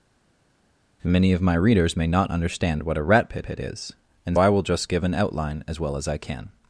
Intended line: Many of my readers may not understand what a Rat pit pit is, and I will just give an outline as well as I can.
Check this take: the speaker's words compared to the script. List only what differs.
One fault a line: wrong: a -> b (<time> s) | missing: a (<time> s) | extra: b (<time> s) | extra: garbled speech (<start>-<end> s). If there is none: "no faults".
no faults